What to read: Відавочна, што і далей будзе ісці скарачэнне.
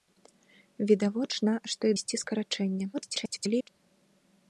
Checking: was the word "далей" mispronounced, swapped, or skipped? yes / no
yes